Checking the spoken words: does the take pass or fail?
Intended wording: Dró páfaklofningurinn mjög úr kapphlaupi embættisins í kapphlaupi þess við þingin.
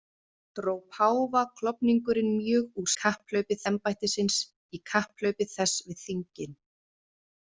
pass